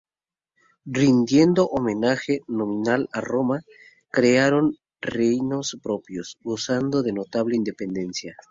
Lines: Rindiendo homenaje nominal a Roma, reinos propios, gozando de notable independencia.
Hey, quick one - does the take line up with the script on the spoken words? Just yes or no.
no